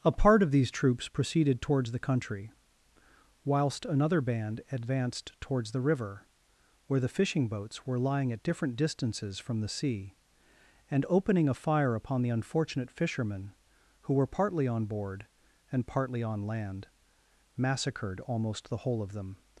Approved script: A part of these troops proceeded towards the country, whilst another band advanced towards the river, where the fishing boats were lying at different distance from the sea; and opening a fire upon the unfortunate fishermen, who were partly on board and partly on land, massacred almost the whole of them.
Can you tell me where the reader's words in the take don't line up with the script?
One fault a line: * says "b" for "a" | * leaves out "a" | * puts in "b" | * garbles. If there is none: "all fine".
* says "distances" for "distance"